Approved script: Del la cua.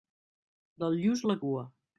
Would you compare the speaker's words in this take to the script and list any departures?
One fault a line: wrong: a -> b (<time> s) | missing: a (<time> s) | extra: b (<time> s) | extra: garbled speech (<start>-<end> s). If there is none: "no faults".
extra: lluç (1.0 s)